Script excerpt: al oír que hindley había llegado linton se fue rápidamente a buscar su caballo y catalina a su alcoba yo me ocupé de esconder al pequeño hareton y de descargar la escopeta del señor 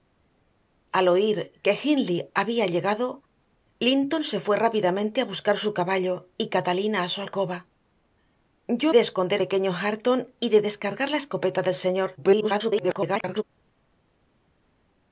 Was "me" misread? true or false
true